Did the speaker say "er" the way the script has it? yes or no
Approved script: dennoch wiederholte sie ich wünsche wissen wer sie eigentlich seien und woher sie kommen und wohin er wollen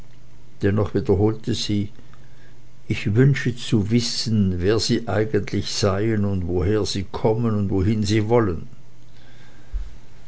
no